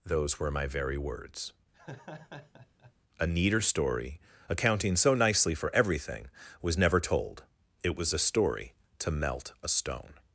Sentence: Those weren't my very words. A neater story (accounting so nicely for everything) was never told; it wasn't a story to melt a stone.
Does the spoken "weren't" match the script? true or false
false